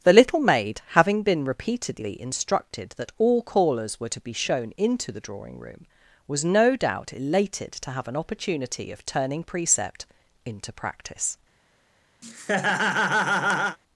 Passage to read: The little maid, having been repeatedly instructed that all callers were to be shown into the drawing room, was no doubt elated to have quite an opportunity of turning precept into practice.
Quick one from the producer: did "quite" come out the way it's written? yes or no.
no